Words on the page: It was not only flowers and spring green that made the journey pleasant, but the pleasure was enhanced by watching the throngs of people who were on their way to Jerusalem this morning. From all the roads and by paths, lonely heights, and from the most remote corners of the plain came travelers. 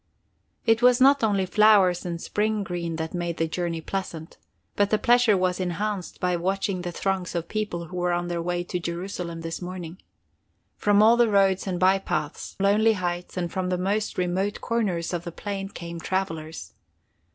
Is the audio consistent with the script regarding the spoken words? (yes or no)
yes